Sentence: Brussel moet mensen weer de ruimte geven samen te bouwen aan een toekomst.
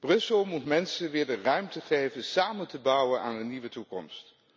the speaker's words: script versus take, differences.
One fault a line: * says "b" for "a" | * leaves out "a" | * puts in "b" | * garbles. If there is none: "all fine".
* puts in "nieuwe"